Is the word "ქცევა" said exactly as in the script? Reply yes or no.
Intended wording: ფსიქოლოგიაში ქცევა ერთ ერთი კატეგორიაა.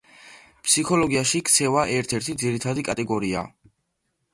yes